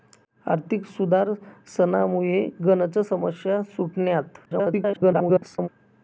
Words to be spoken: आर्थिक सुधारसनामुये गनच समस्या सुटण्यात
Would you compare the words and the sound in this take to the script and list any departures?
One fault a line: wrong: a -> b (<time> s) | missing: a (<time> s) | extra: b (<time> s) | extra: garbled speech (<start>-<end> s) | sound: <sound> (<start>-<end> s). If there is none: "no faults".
extra: garbled speech (4.4-5.7 s)